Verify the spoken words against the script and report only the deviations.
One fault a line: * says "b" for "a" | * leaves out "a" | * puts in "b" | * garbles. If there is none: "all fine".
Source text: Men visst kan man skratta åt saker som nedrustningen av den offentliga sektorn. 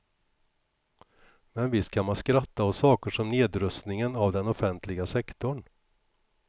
all fine